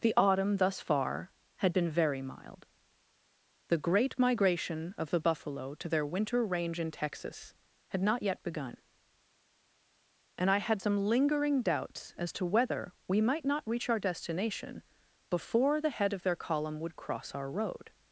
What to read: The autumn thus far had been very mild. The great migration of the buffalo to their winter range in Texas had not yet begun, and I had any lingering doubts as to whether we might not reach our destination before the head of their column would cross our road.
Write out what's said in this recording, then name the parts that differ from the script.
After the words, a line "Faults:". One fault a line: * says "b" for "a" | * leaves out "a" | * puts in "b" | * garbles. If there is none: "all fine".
The autumn thus far had been very mild. The great migration of the buffalo to their winter range in Texas had not yet begun, and I had some lingering doubts as to whether we might not reach our destination before the head of their column would cross our road.
Faults:
* says "some" for "any"